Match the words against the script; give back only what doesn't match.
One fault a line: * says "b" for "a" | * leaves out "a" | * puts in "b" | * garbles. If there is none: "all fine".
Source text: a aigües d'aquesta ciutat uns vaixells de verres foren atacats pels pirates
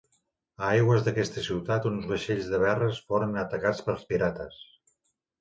all fine